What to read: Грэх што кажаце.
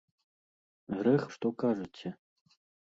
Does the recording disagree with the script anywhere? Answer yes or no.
no